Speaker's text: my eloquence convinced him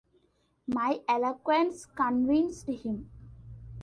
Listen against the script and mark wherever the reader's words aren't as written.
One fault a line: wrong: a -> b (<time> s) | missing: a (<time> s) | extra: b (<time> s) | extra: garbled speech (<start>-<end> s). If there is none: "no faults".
no faults